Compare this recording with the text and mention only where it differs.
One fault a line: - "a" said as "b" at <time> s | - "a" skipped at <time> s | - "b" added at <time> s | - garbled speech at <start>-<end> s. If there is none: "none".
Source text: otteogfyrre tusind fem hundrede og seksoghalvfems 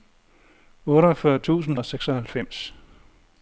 - "fem hundrede" skipped at 1.8 s